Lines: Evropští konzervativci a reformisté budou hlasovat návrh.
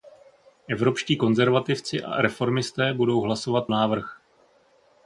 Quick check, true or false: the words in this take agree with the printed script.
true